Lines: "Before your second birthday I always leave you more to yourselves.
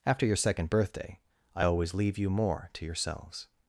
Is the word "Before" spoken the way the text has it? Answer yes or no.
no